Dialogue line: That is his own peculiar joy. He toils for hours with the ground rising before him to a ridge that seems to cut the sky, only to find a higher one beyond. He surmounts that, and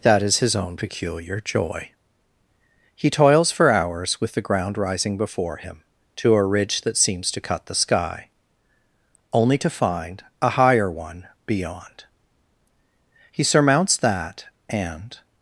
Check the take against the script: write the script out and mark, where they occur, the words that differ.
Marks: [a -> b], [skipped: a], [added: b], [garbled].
That is his own peculiar joy. He toils for hours with the ground rising before him to a ridge that seems to cut the sky, only to find a higher one beyond. He surmounts that, and